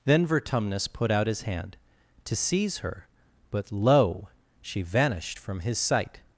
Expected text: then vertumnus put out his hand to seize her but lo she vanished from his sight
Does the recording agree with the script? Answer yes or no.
yes